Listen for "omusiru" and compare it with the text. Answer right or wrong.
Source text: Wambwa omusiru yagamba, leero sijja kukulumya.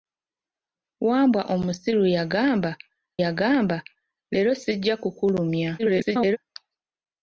right